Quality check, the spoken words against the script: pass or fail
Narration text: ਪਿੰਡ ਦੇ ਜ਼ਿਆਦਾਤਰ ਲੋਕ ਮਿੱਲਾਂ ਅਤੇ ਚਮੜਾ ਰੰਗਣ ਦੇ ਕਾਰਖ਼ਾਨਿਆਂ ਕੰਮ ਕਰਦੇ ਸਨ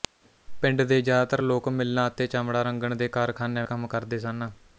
pass